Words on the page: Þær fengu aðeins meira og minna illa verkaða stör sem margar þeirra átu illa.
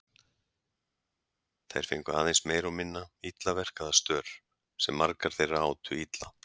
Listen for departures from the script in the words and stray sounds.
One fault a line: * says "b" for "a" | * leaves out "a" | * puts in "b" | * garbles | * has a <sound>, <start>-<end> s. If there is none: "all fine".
all fine